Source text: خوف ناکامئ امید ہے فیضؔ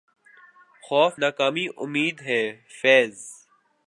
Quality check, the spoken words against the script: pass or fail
pass